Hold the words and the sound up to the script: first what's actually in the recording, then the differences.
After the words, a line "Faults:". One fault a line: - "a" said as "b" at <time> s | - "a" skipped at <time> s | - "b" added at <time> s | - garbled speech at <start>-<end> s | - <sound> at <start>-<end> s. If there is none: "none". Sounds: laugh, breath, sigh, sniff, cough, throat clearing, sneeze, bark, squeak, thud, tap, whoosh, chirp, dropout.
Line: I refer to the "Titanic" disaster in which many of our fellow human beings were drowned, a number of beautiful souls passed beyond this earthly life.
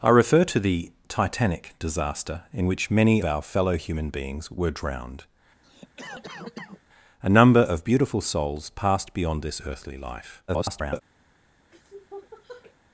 I refer to the "Titanic" disaster in which many our fellow human beings were drowned, a number of beautiful souls passed beyond this earthly life. [garbled]
Faults:
- "of" skipped at 3.2 s
- cough at 5.6-6.8 s
- garbled speech at 10.5-11.0 s
- sniff at 11.7-12.8 s